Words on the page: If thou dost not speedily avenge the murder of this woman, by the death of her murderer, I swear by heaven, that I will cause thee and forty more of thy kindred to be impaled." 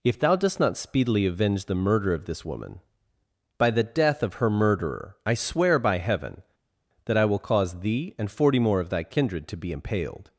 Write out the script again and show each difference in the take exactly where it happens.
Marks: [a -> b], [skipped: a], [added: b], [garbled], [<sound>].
If thou dost not speedily avenge the murder of this woman, by the death of her murderer, I swear by heaven, that I will cause thee and forty more of thy kindred to be impaled."